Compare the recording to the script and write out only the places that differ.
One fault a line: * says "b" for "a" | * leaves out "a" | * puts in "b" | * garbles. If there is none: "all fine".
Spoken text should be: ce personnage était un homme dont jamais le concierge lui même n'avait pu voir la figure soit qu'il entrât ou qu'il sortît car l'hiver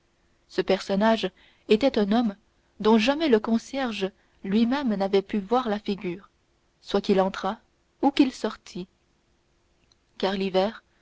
all fine